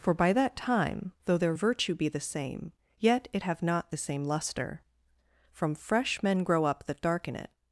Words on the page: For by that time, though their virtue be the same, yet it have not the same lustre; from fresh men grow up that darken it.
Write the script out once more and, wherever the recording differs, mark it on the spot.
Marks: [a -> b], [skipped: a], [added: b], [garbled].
For by that time, though their virtue be the same, yet it have not the same lustre; from fresh men grow up that darken it.